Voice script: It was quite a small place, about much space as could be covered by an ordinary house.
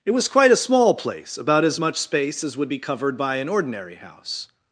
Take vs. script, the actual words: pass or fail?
fail